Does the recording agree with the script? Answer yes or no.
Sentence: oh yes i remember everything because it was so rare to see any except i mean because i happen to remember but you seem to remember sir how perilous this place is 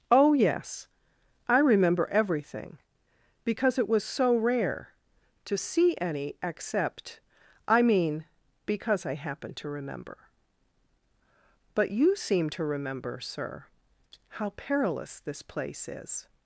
yes